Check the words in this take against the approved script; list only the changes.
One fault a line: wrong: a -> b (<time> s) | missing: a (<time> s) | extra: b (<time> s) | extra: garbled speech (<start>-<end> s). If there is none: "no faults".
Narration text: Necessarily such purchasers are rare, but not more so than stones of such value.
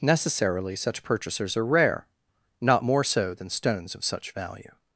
missing: but (2.1 s)